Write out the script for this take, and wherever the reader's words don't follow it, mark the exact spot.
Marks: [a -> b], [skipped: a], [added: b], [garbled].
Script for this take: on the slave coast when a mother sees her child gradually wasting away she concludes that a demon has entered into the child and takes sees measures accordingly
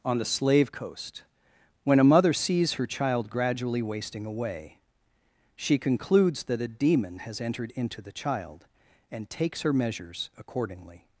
on the slave coast when a mother sees her child gradually wasting away she concludes that a demon has entered into the child and takes [sees -> her] measures accordingly